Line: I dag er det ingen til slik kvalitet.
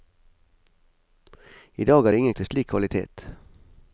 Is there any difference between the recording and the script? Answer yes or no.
no